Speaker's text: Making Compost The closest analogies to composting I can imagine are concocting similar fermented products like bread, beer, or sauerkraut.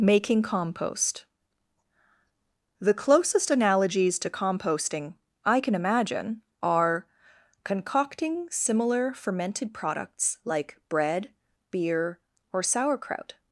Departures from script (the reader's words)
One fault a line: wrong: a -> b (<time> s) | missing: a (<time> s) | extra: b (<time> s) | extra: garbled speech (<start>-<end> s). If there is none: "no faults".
no faults